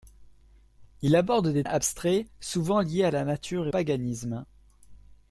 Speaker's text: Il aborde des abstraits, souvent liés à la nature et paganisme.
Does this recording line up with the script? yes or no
yes